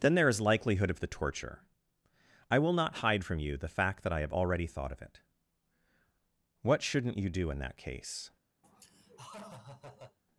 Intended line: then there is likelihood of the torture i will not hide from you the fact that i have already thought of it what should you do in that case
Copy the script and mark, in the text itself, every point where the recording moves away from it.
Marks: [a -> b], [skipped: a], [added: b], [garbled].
then there is likelihood of the torture i will not hide from you the fact that i have already thought of it what [should -> shouldn't] you do in that case